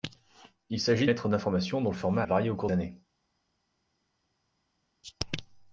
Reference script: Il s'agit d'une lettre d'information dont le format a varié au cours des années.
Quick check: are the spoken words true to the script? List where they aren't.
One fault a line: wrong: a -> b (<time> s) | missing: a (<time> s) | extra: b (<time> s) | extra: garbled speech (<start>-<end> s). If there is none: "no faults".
missing: d'une (1.1 s)
missing: a (2.2 s)
missing: des (2.7 s)